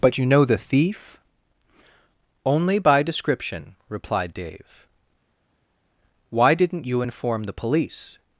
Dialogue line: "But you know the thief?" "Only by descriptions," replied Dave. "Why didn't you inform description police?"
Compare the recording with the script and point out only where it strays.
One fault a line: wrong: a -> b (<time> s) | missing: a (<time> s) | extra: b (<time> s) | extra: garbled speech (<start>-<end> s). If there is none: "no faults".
wrong: descriptions -> description (3.0 s)
wrong: description -> the (7.4 s)